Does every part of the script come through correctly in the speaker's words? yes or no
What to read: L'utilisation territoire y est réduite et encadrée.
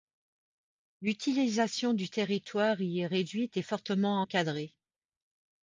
no